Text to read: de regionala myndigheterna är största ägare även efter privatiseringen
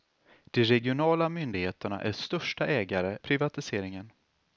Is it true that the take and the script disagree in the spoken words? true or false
true